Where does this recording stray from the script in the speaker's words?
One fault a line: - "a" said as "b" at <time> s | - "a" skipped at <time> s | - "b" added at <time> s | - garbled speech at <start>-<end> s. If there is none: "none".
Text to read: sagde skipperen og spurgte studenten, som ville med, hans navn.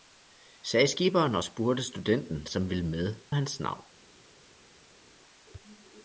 none